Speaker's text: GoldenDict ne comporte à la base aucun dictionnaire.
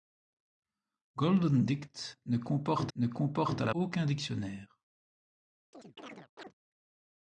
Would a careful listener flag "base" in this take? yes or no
yes